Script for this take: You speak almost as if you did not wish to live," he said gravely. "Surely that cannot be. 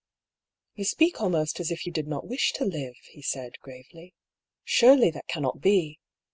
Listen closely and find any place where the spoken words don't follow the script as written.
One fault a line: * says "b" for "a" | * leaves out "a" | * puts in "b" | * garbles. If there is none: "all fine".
all fine